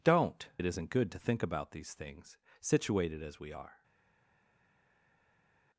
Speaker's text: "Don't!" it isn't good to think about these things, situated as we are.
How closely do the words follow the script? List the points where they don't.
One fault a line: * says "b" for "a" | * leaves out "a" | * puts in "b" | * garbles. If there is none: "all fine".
all fine